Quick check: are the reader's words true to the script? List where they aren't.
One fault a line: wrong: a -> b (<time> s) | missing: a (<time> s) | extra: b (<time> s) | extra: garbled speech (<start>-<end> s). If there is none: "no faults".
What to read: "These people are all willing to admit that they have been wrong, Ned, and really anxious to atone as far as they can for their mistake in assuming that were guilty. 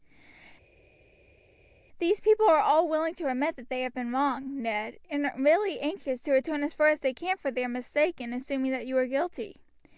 extra: you (8.8 s)